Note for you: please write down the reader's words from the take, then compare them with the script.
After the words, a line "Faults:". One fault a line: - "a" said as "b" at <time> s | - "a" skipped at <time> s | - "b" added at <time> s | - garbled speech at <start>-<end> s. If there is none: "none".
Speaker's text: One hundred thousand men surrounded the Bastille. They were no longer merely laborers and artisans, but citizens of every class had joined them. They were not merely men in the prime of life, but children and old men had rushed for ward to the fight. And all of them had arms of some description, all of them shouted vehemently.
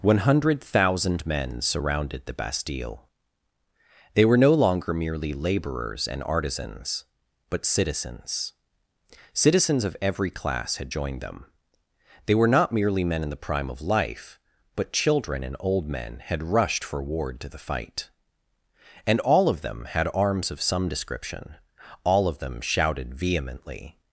One hundred thousand men surrounded the Bastille. They were no longer merely laborers and artisans, but citizens citizens of every class had joined them. They were not merely men in the prime of life, but children and old men had rushed for ward to the fight. And all of them had arms of some description, all of them shouted vehemently.
Faults:
- "citizens" added at 9.3 s